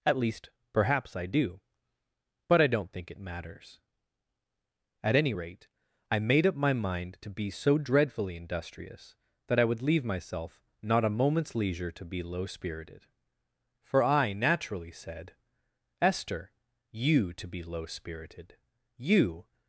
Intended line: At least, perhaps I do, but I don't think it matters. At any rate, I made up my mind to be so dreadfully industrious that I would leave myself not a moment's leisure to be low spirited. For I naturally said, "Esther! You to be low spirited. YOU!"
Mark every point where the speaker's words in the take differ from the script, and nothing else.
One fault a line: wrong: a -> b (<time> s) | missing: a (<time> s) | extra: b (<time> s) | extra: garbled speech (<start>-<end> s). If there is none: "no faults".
no faults